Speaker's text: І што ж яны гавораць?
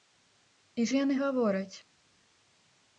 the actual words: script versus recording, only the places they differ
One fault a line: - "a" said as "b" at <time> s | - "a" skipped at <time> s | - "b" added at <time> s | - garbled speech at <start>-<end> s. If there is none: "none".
- "што" skipped at 0.8 s